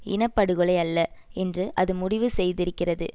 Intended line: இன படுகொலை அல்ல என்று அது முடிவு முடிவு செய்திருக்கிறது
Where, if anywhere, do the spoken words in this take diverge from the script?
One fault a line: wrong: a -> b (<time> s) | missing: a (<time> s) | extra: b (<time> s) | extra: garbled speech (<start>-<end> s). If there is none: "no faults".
missing: முடிவு (2.3 s)